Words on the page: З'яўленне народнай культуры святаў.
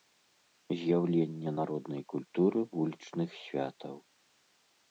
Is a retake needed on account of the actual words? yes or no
yes